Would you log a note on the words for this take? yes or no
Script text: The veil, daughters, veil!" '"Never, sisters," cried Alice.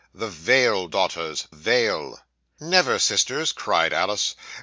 no